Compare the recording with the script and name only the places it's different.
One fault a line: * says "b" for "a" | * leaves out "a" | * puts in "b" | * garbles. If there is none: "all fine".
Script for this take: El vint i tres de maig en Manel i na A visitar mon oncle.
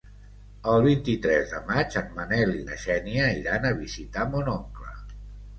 * puts in "Xènia iran"